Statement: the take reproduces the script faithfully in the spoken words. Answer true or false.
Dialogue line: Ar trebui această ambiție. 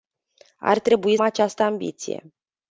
true